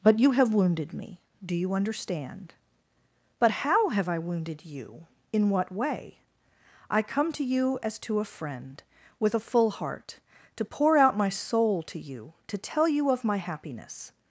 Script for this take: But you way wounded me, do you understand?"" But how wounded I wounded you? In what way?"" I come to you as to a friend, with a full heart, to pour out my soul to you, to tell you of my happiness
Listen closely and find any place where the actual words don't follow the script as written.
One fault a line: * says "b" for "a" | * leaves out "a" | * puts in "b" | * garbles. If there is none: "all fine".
* says "have" for "way"
* says "have" for "wounded"